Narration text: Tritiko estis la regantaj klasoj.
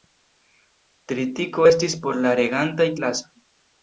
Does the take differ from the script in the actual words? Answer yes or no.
yes